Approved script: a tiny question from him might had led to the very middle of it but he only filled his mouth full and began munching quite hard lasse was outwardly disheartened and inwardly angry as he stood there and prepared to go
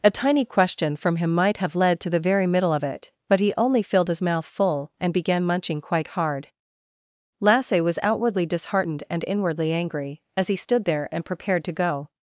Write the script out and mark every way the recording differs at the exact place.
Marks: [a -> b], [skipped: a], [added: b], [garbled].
a tiny question from him might [had -> have] led to the very middle of it but he only filled his mouth full and began munching quite hard lasse was outwardly disheartened and inwardly angry as he stood there and prepared to go